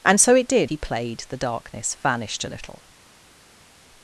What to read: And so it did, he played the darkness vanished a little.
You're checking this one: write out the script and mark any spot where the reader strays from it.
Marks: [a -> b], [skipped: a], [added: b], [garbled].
And so it did, he played the darkness vanished a little.